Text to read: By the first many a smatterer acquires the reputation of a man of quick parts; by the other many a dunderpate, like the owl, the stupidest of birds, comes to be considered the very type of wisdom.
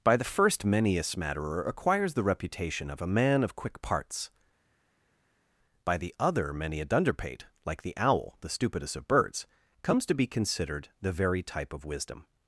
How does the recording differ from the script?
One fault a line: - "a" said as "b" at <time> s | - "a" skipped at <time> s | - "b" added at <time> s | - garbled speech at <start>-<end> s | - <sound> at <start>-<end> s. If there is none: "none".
none